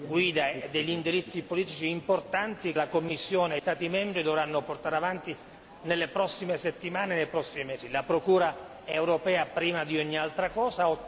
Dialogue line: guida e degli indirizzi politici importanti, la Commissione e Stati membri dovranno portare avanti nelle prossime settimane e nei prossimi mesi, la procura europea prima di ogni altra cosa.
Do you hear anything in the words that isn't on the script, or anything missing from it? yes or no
no